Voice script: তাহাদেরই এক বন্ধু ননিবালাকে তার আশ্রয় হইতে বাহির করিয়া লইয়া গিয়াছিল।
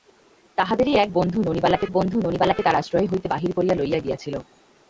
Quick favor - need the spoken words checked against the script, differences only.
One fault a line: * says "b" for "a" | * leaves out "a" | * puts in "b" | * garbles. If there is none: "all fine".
* puts in "বন্ধু ননিবালাকে"